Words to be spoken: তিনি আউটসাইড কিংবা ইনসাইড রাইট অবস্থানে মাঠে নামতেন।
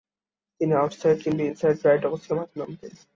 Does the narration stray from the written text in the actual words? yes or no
no